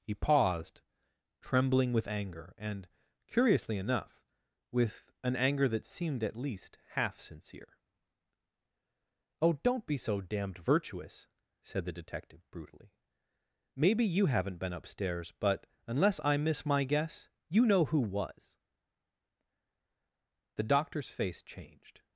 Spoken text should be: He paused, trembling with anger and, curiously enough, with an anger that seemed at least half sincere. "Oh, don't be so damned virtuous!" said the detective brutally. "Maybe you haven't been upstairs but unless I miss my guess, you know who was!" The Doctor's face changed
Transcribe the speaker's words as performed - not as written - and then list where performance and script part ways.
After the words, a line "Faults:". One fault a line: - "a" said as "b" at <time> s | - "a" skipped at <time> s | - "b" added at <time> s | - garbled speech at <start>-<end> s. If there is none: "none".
He paused, trembling with anger and, curiously enough, with an anger that seemed at least half sincere. "Oh, don't be so damned virtuous!" said the detective brutally. "Maybe you haven't been upstairs but unless I miss my guess, you know who was!" The Doctor's face changed
Faults:
none